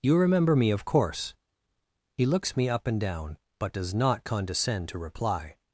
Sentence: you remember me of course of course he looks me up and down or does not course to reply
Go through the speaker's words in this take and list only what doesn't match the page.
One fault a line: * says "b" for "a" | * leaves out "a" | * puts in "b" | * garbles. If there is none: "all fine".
* leaves out "of course"
* says "but" for "or"
* says "condescend" for "course"